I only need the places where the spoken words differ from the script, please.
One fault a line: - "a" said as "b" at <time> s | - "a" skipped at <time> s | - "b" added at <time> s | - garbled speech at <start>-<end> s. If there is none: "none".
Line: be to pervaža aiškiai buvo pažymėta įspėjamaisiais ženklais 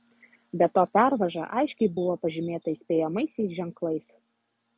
none